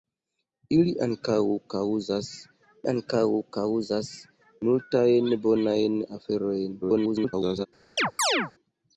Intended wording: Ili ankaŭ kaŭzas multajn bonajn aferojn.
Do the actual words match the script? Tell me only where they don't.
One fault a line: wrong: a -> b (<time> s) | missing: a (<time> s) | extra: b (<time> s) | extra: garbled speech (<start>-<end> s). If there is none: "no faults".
extra: ankaŭ kaŭzas (2.9 s)
extra: garbled speech (6.8-7.7 s)